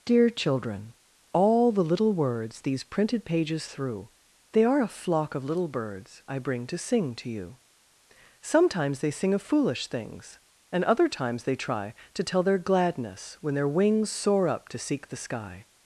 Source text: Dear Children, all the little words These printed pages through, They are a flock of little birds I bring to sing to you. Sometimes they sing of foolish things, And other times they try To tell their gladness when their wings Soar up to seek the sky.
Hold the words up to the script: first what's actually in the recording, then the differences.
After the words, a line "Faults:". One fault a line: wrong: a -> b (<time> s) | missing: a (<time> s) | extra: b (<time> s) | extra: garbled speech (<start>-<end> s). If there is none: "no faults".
Dear Children, all the little words These printed pages through, They are a flock of little birds I bring to sing to you. Sometimes they sing of foolish things, And other times they try To tell their gladness when their wings Soar up to seek the sky.
Faults:
no faults